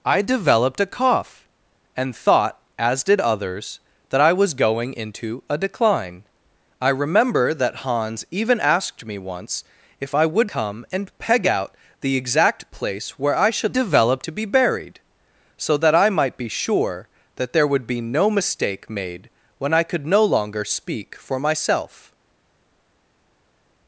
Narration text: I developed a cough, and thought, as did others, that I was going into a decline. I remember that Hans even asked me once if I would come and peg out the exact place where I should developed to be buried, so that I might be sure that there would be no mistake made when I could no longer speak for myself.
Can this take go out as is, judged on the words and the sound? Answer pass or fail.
pass